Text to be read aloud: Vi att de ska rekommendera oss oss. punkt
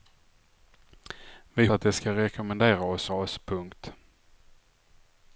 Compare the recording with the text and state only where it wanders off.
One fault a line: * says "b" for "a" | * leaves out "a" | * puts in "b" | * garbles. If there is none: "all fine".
all fine